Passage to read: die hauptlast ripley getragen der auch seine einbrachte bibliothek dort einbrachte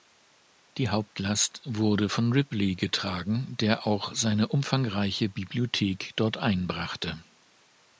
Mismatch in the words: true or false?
true